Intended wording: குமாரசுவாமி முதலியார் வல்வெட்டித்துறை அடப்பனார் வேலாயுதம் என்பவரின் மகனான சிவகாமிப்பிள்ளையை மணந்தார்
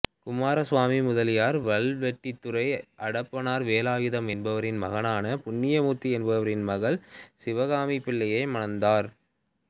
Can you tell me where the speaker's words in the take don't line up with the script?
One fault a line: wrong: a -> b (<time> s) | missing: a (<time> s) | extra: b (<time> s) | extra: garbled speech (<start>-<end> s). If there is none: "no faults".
extra: புண்ணியமூர்த்தி என்பவரின் மகள் (5.4 s)